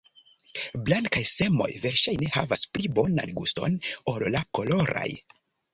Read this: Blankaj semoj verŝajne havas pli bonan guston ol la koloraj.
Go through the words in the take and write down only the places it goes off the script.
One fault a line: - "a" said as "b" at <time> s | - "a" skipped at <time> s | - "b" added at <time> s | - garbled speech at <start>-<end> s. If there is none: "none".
none